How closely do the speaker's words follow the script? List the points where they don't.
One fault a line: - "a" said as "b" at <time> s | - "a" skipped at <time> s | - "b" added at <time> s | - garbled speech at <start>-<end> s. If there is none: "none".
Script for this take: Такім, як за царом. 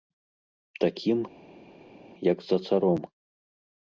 none